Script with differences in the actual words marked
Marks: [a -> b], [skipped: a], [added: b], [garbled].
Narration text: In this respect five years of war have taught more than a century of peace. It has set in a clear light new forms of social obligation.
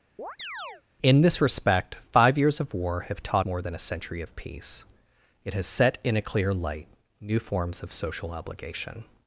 In this respect five years of war have taught more than a century of peace. It has set in a clear light new forms of social obligation.